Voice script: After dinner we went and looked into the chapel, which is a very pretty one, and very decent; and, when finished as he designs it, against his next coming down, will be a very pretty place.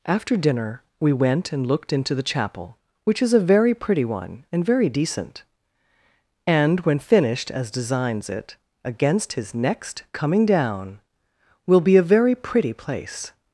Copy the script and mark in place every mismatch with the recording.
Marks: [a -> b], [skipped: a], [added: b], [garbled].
After dinner we went and looked into the chapel, which is a very pretty one, and very decent; and, when finished as [skipped: he] designs it, against his next coming down, will be a very pretty place.